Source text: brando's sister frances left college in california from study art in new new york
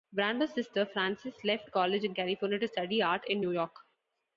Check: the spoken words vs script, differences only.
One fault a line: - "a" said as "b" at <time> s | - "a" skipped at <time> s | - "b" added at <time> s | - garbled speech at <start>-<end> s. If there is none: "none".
- "from" said as "to" at 2.6 s
- "new" skipped at 3.5 s